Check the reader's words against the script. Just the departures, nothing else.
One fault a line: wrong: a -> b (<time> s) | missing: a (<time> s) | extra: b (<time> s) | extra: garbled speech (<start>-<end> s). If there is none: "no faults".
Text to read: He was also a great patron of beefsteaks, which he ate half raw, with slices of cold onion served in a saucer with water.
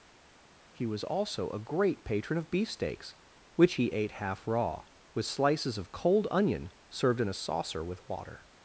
no faults